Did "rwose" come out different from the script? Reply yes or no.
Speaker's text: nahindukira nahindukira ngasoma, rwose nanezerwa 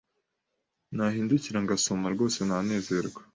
no